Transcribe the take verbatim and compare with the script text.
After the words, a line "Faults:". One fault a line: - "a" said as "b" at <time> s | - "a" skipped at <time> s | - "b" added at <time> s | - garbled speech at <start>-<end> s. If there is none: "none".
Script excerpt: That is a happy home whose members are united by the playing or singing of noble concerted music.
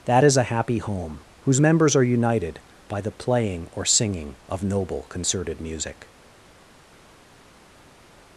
That is a happy home whose members are united by the playing or singing of noble concerted music.
Faults:
none